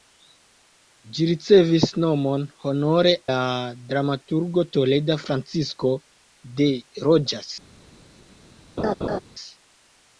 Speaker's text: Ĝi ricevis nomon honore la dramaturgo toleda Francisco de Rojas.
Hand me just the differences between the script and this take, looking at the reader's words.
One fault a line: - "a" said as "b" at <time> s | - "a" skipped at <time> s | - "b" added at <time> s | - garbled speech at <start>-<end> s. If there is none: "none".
none